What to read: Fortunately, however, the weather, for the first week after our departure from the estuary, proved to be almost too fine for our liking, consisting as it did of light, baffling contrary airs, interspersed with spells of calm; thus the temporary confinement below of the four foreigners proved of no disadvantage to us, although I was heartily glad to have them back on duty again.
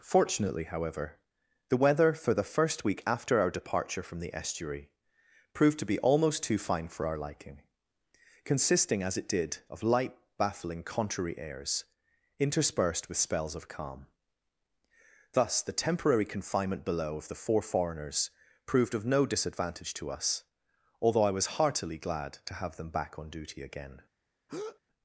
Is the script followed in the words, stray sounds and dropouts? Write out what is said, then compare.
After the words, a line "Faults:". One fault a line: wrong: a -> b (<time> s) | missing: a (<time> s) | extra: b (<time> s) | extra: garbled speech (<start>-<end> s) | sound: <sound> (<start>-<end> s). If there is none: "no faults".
Fortunately, however, the weather, for the first week after our departure from the estuary, proved to be almost too fine for our liking, consisting as it did of light, baffling contrary airs, interspersed with spells of calm; thus the temporary confinement below of the four foreigners proved of no disadvantage to us, although I was heartily glad to have them back on duty again.
Faults:
sound: breath (24.5-24.8 s)